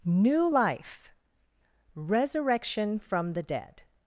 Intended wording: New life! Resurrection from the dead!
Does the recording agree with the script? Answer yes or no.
yes